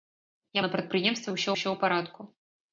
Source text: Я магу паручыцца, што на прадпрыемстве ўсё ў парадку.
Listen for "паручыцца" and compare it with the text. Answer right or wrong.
wrong